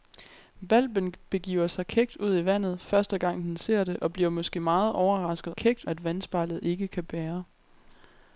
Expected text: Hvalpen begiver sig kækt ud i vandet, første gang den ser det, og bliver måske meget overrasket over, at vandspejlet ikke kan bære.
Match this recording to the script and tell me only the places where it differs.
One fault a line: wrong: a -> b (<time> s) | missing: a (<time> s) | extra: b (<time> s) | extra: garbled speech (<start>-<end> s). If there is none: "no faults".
wrong: over -> kækt (5.6 s)